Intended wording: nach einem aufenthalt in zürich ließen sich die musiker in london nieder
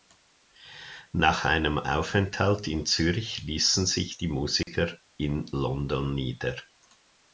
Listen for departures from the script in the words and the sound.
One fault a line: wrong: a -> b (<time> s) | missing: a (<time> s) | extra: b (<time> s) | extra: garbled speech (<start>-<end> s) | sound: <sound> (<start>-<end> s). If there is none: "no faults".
sound: dropout (4.6-4.7 s)